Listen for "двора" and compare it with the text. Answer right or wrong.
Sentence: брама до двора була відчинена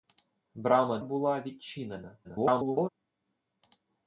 wrong